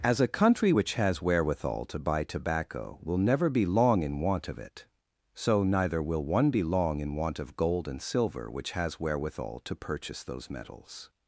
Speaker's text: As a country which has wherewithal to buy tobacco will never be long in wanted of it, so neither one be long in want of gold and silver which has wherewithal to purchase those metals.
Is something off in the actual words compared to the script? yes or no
yes